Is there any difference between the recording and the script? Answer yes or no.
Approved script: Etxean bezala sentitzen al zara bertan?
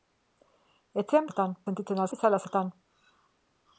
yes